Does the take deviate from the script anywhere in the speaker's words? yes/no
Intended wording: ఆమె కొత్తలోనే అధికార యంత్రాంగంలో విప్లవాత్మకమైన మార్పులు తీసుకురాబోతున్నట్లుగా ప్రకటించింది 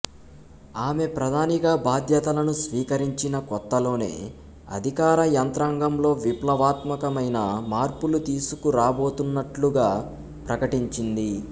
yes